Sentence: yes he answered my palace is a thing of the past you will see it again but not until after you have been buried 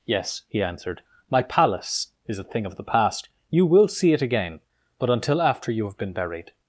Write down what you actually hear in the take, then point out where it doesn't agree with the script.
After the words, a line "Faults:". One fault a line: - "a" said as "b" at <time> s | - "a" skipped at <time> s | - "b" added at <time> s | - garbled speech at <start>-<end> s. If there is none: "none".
yes he answered my palace is a thing of the past you will see it again but until after you have been buried
Faults:
- "not" skipped at 5.1 s